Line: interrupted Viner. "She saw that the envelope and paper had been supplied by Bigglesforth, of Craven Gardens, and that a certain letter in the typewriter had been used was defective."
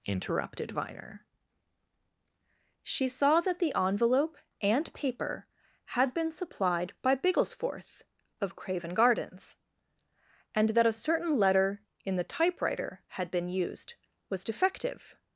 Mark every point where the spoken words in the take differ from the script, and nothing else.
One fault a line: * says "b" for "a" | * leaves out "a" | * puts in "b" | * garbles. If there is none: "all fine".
all fine